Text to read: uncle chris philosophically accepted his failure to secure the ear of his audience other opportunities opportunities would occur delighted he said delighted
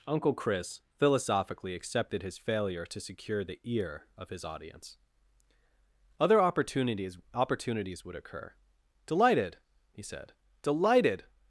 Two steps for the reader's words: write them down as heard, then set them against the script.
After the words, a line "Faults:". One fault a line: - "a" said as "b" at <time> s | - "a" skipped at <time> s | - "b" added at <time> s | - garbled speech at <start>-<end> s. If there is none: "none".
uncle chris philosophically accepted his failure to secure the ear of his audience other opportunities opportunities would occur delighted he said delighted
Faults:
none